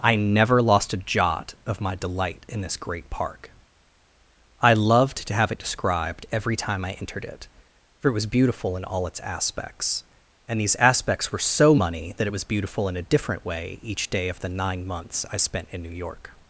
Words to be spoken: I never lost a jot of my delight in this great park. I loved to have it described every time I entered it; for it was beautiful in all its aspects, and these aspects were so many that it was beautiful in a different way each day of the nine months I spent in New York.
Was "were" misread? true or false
false